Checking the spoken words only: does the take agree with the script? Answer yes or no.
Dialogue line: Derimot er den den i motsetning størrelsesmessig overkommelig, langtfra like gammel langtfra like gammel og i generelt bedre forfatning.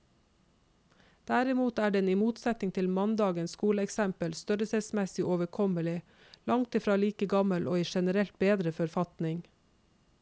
no